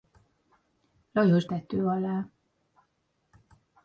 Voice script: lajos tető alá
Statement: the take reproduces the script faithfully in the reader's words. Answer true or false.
true